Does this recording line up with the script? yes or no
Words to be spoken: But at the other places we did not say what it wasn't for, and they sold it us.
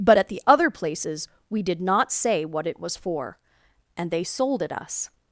no